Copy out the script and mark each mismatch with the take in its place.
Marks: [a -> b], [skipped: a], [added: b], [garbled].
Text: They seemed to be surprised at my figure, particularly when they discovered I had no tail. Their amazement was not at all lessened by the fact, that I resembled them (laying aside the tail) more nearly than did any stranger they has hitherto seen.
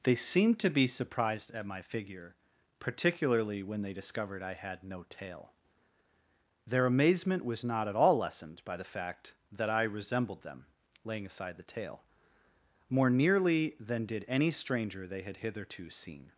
They seemed to be surprised at my figure, particularly when they discovered I had no tail. Their amazement was not at all lessened by the fact, that I resembled them (laying aside the tail) more nearly than did any stranger they [has -> had] hitherto seen.